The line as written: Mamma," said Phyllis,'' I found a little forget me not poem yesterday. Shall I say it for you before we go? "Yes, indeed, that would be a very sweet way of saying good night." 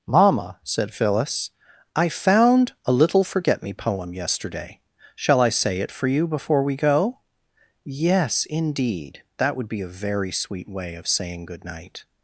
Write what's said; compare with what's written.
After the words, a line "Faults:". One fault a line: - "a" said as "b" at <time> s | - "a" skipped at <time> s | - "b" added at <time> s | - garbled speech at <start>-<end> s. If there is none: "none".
Mamma," said Phyllis,'' I found a little forget me poem yesterday. Shall I say it for you before we go? "Yes, indeed, that would be a very sweet way of saying good night."
Faults:
- "not" skipped at 3.7 s